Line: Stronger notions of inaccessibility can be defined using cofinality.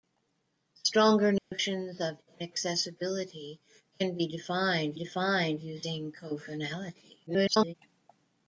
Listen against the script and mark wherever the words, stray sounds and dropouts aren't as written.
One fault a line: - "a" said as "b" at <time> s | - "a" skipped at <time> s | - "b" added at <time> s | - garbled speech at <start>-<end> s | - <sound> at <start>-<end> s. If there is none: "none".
- dropout at 1.4-1.5 s
- "defined" added at 4.9 s
- garbled speech at 7.3-7.7 s